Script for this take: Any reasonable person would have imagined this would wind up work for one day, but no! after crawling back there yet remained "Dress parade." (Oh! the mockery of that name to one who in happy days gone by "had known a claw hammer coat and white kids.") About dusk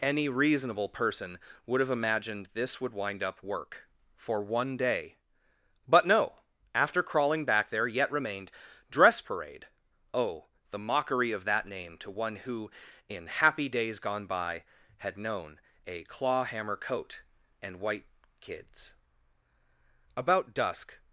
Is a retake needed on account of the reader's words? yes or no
no